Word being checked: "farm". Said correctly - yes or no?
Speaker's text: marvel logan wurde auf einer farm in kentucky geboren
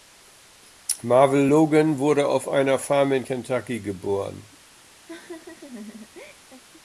yes